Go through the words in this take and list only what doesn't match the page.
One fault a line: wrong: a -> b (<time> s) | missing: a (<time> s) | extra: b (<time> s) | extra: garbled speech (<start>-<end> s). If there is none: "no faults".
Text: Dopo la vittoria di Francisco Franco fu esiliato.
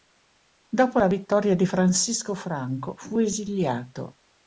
no faults